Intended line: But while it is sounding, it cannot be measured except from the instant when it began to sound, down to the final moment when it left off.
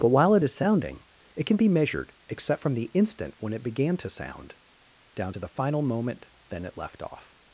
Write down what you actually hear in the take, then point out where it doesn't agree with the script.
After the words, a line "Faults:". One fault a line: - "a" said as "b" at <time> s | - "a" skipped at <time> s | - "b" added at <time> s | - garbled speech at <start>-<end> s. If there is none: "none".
But while it is sounding, it can be measured except from the instant when it began to sound, down to the final moment then it left off.
Faults:
- "cannot" said as "can" at 1.5 s
- "when" said as "then" at 6.5 s